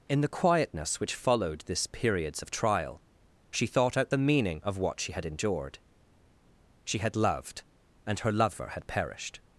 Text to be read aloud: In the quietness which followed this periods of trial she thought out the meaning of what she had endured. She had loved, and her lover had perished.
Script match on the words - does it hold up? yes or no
yes